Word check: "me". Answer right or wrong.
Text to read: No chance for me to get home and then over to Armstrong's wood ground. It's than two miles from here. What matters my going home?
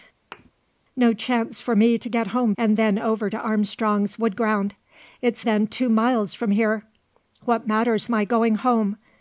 right